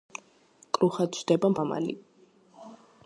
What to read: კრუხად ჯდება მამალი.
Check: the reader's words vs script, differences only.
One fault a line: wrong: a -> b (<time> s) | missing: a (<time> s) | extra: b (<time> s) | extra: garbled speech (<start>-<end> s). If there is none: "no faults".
no faults